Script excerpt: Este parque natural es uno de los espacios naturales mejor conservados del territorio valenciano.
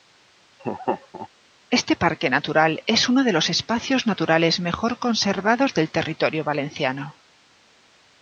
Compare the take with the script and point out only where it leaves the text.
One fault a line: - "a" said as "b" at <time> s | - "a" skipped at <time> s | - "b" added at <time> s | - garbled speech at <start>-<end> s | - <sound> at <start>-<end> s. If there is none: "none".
- laugh at 0.6-1.3 s